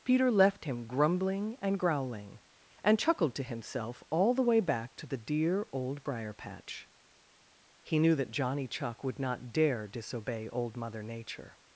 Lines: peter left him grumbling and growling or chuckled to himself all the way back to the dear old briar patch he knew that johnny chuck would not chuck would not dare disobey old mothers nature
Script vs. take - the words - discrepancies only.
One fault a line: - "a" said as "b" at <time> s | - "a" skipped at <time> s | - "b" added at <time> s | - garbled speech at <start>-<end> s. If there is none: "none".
- "or" said as "and" at 2.8 s
- "chuck would not" skipped at 9.5 s
- "mothers" said as "mother" at 10.8 s